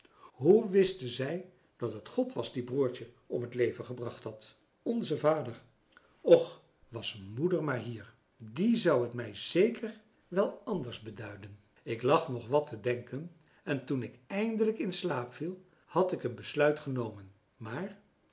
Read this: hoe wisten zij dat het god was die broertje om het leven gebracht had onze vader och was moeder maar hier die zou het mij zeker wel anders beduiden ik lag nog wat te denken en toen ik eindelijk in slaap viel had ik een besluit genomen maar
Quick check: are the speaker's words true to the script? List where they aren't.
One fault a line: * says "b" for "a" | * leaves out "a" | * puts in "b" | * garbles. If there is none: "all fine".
all fine